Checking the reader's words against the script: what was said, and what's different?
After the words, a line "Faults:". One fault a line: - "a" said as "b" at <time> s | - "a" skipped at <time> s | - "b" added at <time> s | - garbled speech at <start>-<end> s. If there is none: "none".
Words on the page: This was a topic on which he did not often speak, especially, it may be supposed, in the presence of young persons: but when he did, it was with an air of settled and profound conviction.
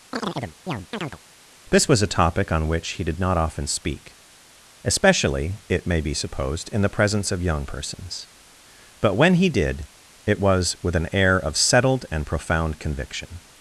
This was a topic on which he did not often speak, especially, it may be supposed, in the presence of young persons: but when he did, it was with an air of settled and profound conviction.
Faults:
none